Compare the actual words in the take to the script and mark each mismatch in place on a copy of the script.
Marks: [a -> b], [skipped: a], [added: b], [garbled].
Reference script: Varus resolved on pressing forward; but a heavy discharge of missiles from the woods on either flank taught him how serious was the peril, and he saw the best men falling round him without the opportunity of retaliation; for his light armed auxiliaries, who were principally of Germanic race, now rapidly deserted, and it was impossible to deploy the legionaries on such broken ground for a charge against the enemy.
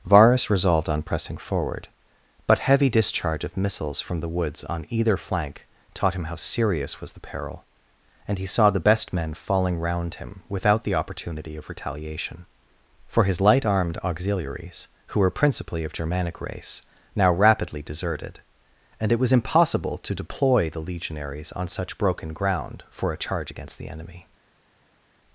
Varus resolved on pressing forward; but [skipped: a] heavy discharge of missiles from the woods on either flank taught him how serious was the peril, and he saw the best men falling round him without the opportunity of retaliation; for his light armed auxiliaries, who were principally of Germanic race, now rapidly deserted, and it was impossible to deploy the legionaries on such broken ground for a charge against the enemy.